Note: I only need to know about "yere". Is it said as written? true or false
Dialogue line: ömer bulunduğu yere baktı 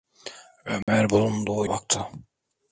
false